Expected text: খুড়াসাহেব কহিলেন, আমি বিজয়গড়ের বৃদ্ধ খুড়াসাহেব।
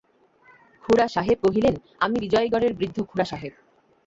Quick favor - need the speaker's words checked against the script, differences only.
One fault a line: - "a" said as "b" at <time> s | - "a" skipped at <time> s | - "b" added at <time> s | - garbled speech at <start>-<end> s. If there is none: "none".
none